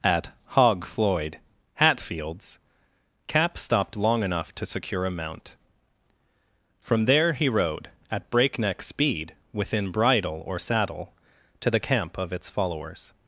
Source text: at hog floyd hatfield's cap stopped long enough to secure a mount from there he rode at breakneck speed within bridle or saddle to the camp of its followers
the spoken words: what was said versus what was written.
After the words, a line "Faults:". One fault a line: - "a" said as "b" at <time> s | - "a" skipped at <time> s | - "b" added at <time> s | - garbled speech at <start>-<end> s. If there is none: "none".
at hog floyd hatfield's cap stopped long enough to secure a mount from there he rode at breakneck speed within bridle or saddle to the camp of its followers
Faults:
none